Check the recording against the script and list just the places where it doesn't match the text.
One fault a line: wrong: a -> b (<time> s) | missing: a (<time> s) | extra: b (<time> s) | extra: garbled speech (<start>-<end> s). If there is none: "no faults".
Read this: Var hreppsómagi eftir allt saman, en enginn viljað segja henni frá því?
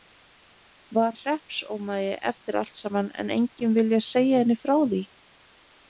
no faults